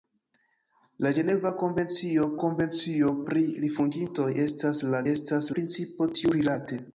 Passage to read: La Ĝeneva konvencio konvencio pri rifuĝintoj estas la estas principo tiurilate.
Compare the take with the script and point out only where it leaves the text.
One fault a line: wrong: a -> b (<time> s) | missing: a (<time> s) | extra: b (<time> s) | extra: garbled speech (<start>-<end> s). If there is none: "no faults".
no faults